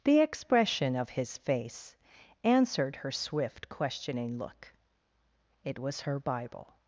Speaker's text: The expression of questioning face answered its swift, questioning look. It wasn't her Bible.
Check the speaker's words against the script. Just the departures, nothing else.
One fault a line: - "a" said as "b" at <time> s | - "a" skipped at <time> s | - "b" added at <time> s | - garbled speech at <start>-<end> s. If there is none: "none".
- "questioning" said as "his" at 1.1 s
- "its" said as "her" at 3.0 s
- "wasn't" said as "was" at 5.8 s